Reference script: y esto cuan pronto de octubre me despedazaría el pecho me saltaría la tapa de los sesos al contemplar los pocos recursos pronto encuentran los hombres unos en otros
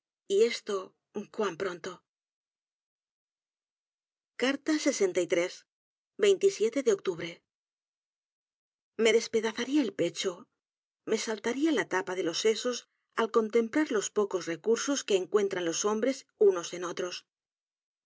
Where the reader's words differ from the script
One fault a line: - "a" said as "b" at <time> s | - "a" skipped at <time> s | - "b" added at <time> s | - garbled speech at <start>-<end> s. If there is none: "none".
- "pronto" said as "que" at 15.0 s